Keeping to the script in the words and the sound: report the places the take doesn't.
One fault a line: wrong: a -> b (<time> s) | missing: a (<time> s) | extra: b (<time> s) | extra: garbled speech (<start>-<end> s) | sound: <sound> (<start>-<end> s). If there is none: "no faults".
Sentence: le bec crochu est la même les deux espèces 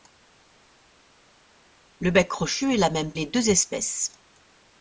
no faults